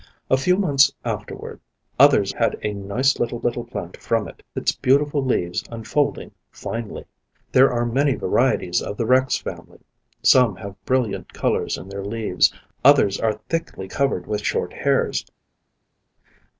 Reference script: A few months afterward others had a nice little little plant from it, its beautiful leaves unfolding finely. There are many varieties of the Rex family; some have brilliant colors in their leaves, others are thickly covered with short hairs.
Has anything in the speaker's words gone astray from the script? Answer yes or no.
no